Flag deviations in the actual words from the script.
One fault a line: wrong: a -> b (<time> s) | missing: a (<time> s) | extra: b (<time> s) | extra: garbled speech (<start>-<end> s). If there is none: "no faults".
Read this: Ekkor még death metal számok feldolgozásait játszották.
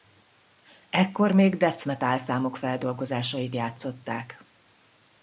no faults